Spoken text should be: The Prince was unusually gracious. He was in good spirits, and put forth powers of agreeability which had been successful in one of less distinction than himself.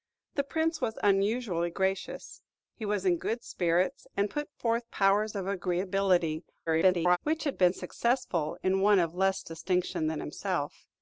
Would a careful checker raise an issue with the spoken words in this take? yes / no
yes